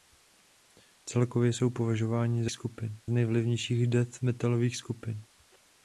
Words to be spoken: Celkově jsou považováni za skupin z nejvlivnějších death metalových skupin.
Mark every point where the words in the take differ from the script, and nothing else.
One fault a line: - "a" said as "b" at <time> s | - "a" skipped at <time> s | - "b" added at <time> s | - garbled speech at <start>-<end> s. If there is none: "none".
none